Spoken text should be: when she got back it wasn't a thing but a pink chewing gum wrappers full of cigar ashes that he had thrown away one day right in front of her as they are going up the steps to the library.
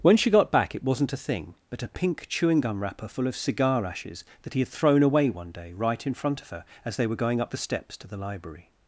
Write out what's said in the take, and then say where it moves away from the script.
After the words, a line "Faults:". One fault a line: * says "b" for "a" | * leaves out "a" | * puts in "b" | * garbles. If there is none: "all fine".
when she got back it wasn't a thing but a pink chewing gum wrapper full of cigar ashes that he had thrown away one day right in front of her as they were going up the steps to the library.
Faults:
* says "wrapper" for "wrappers"
* says "were" for "are"